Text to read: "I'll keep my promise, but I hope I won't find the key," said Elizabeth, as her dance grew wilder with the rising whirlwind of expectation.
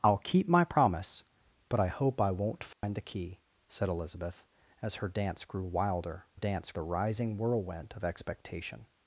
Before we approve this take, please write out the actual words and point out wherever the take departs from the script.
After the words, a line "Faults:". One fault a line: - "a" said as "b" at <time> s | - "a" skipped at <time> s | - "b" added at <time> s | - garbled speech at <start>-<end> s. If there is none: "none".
"I'll keep my promise, but I hope I won't find the key," said Elizabeth, as her dance grew wilder dance the rising whirlwind of expectation.
Faults:
- "with" said as "dance" at 6.3 s